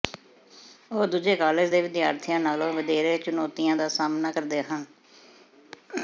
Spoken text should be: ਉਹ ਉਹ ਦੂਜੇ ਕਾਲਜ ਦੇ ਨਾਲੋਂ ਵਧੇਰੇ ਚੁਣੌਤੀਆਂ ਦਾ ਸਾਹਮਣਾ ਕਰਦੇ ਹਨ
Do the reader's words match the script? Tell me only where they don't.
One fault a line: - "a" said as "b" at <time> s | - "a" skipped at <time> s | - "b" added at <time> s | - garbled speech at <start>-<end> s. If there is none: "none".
- "ਉਹ" skipped at 1.1 s
- "ਵਿਦਿਆਰਥੀਆਂ" added at 1.8 s